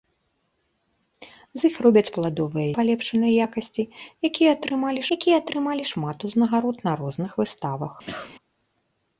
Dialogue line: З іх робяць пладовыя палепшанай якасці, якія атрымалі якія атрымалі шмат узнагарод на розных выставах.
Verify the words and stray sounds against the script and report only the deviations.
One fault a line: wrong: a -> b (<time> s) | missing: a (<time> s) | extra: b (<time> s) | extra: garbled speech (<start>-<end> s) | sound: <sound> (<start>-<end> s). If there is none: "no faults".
sound: cough (8.1-8.3 s)